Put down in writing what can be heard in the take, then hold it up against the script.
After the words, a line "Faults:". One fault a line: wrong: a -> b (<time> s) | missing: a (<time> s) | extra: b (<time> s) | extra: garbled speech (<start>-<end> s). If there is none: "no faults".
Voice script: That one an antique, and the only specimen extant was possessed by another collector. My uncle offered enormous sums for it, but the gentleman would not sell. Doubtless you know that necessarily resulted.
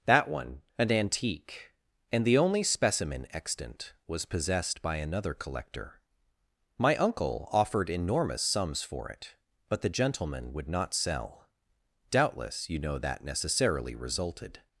That one an antique, and the only specimen extant was possessed by another collector. My uncle offered enormous sums for it, but the gentleman would not sell. Doubtless you know that necessarily resulted.
Faults:
no faults